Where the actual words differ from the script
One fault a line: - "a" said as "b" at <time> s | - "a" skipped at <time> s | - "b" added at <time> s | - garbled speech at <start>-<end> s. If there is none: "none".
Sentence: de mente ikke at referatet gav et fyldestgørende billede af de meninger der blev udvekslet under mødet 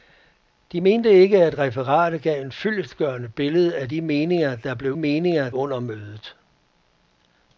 - "udvekslet" said as "meninger" at 5.0 s